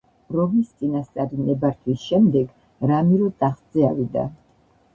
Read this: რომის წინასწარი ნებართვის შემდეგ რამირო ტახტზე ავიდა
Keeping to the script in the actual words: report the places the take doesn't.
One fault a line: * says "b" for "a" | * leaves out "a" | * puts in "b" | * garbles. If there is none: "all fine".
all fine